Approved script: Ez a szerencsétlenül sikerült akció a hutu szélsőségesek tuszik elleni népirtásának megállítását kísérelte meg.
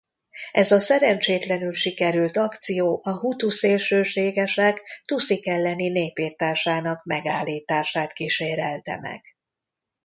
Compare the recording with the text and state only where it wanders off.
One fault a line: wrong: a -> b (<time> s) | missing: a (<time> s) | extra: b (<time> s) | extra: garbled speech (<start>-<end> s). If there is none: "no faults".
no faults